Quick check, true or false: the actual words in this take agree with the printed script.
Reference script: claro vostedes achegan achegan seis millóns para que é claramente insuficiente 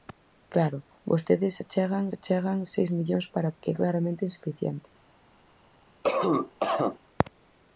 true